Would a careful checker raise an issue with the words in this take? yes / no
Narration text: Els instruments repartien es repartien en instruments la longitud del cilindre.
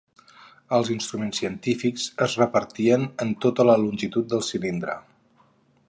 yes